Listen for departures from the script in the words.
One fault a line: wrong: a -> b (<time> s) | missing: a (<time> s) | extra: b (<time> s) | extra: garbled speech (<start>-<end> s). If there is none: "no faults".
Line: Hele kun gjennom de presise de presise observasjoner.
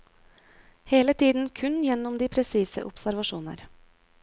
extra: tiden (1.1 s)
missing: de presise (2.8 s)